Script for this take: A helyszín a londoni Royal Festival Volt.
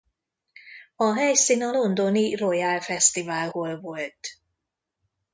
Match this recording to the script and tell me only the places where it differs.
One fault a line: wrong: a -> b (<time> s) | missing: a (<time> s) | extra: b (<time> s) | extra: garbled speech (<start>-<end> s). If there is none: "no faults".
extra: Hall (3.5 s)